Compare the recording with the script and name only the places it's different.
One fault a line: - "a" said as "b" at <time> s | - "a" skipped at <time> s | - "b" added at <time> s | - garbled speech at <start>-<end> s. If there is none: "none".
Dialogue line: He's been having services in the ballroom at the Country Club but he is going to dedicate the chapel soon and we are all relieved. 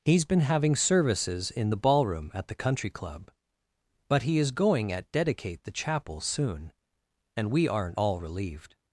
- "to" said as "at" at 4.9 s
- "are" said as "aren't" at 7.7 s